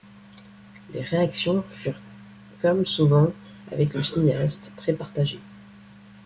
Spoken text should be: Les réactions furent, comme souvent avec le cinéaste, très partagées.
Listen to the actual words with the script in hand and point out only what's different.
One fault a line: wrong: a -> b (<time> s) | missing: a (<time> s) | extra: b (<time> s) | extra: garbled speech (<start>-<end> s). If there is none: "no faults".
no faults